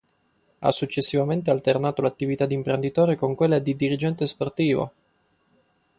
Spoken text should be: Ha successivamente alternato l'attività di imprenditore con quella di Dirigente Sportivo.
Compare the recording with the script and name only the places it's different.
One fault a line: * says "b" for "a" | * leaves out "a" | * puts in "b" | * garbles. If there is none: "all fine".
all fine